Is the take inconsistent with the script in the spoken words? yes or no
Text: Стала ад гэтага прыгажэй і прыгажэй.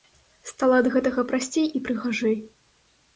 yes